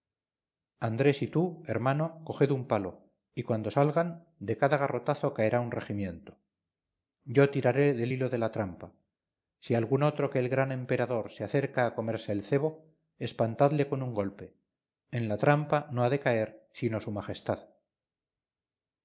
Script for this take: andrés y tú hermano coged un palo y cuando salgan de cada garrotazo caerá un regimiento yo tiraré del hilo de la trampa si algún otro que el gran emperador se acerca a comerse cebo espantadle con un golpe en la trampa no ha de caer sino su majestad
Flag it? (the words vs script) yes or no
yes